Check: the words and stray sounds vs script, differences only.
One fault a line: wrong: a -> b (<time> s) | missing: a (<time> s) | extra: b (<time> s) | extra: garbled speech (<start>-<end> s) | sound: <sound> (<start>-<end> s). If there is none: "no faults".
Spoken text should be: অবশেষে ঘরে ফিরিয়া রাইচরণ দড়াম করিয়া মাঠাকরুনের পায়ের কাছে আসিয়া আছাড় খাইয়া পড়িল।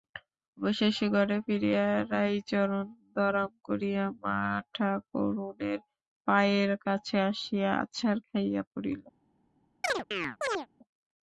sound: chirp (9.8-10.7 s)